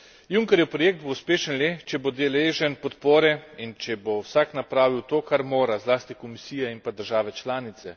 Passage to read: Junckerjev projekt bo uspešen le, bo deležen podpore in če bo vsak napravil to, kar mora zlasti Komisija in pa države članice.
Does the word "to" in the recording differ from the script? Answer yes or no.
no